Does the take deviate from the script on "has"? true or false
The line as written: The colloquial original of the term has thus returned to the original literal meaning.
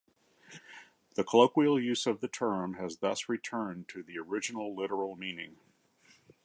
false